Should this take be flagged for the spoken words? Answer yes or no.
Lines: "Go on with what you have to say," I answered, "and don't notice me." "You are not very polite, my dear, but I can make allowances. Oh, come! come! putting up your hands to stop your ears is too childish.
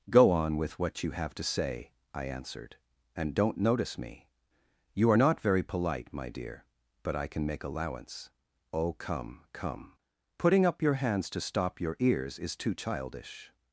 yes